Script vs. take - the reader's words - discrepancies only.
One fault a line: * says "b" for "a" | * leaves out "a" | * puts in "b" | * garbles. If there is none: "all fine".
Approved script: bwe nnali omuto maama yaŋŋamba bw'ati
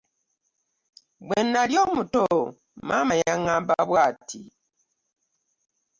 all fine